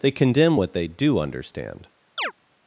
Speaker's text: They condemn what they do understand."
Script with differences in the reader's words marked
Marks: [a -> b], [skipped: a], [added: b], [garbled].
They condemn what they do understand."